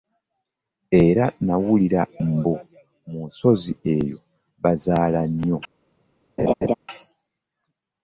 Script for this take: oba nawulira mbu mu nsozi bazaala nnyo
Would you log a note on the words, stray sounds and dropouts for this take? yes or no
yes